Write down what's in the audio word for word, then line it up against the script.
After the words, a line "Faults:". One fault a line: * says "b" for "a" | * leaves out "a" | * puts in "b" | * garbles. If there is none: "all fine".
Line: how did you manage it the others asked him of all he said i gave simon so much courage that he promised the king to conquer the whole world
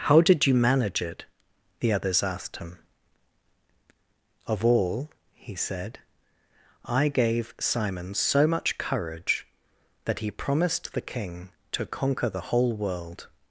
how did you manage it the others asked him of all he said i gave simon so much courage that he promised the king to conquer the whole world
Faults:
all fine